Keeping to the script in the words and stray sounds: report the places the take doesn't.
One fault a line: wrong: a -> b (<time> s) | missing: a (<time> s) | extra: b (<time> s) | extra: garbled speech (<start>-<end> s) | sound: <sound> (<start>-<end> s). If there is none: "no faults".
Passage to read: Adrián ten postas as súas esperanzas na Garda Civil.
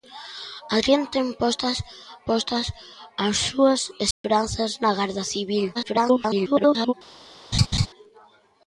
extra: postas (2.3 s)
sound: dropout (4.1-4.2 s)
extra: garbled speech (5.7-6.9 s)
sound: laugh (7.5-7.9 s)